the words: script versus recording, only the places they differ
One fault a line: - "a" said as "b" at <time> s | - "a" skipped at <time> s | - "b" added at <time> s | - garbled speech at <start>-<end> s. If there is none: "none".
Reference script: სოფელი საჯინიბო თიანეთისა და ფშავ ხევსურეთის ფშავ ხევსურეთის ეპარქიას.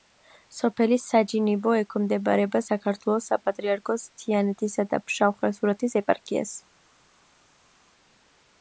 - "ექვემდებარება საქართველოს საპატრიარქოს" added at 1.8 s
- "ფშავ ხევსურეთის" skipped at 6.0 s